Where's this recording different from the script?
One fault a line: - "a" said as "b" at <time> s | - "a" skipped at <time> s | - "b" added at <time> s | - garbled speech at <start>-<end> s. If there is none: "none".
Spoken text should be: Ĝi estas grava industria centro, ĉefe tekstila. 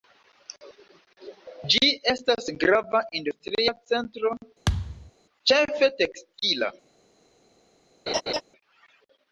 none